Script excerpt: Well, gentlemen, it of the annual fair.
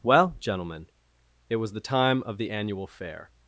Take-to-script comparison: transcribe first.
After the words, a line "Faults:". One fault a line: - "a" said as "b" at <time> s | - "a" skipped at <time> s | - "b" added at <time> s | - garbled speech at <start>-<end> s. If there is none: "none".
Well, gentlemen, it was the time of the annual fair.
Faults:
- "was the time" added at 1.6 s